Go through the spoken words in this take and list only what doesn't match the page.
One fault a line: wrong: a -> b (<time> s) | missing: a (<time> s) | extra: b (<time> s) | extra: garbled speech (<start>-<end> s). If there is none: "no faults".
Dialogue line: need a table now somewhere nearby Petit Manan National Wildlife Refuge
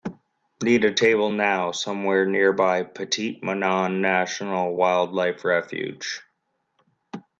no faults